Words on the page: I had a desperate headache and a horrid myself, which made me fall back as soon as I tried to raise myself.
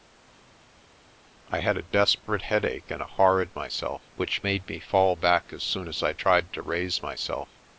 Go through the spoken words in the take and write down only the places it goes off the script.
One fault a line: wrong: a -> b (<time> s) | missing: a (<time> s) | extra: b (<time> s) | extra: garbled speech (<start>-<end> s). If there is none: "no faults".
no faults